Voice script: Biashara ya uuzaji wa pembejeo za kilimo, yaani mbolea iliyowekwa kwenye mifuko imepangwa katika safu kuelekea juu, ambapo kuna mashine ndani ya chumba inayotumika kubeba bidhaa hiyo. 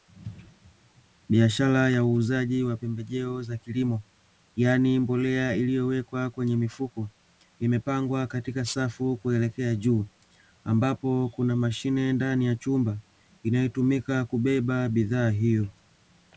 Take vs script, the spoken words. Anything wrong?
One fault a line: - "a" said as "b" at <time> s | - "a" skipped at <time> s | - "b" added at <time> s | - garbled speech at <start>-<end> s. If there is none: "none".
none